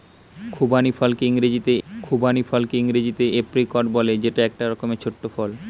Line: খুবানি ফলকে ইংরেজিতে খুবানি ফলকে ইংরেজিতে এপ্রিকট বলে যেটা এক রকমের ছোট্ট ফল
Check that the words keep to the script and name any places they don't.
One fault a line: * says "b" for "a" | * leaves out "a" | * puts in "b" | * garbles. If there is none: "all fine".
all fine